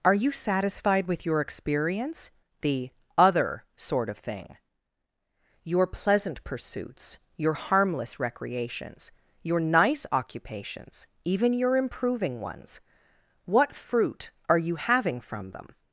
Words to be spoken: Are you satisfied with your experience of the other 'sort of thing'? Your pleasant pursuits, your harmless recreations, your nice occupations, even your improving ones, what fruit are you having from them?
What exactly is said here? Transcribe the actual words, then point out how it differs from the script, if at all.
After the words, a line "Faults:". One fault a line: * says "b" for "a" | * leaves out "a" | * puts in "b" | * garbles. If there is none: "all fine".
Are you satisfied with your experience the other 'sort of thing'? Your pleasant pursuits, your harmless recreations, your nice occupations, even your improving ones, what fruit are you having from them?
Faults:
* leaves out "of"